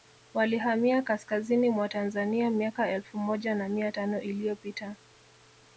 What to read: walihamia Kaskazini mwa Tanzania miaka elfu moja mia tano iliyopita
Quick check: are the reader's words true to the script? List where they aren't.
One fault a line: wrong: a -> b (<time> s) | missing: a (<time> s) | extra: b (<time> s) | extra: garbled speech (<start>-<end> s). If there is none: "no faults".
extra: na (3.5 s)